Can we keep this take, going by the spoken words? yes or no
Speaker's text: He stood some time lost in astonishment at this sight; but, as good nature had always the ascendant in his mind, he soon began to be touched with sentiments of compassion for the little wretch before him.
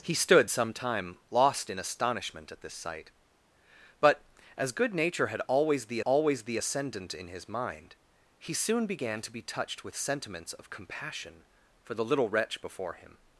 no